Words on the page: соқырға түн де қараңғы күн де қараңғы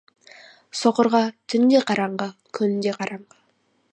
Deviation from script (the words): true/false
false